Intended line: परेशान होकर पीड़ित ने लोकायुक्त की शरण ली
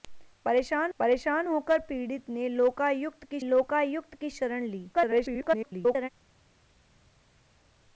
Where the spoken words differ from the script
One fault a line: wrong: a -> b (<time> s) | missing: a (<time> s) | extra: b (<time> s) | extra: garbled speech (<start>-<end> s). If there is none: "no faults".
extra: परेशान (1.0 s)
extra: लोकायुक्त की (3.4 s)
extra: garbled speech (4.9-6.1 s)